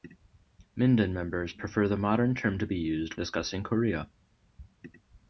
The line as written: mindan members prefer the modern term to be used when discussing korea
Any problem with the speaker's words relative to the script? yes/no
yes